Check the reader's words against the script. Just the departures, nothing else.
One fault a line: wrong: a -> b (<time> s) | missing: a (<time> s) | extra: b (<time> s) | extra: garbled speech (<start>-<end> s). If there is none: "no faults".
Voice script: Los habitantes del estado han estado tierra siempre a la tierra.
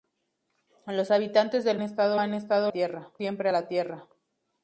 no faults